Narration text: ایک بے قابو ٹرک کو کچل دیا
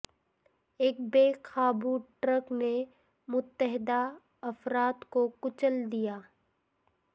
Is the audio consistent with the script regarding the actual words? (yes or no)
no